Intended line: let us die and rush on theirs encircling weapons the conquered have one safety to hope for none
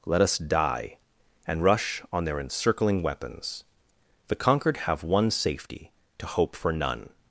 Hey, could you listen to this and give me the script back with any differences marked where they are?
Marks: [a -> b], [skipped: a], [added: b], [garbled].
let us die and rush on [theirs -> their] encircling weapons the conquered have one safety to hope for none